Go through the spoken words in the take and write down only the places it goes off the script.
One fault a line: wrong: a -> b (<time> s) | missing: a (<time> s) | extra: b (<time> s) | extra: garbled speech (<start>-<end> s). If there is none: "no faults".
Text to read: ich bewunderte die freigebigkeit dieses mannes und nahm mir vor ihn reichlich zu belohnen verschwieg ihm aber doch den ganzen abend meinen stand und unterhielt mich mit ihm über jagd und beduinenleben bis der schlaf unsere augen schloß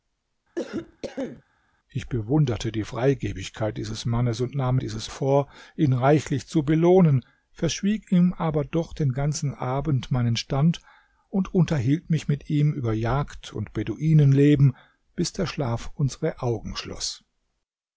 wrong: mir -> dieses (4.8 s)